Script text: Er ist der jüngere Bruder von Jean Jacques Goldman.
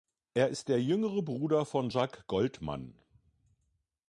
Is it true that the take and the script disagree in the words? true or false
true